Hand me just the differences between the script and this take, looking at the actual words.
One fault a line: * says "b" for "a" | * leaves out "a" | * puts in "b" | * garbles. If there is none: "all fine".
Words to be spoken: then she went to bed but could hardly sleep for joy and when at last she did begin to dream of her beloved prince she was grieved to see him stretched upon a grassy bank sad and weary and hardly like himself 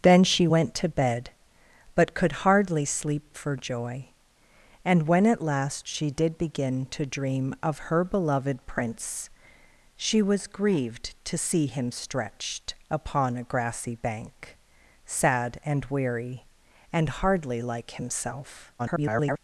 * garbles